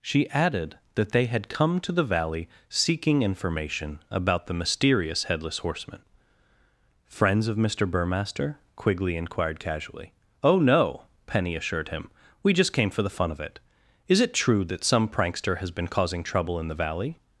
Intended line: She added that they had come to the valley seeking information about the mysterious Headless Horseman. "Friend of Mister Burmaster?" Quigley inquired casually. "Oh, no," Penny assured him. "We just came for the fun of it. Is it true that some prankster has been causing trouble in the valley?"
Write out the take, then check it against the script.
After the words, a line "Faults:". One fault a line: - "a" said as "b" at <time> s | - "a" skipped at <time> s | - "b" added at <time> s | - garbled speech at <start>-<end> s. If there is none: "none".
She added that they had come to the valley seeking information about the mysterious Headless Horseman. "Friends of Mister Burmaster?" Quigley inquired casually. "Oh, no," Penny assured him. "We just came for the fun of it. Is it true that some prankster has been causing trouble in the valley?"
Faults:
- "Friend" said as "Friends" at 7.0 s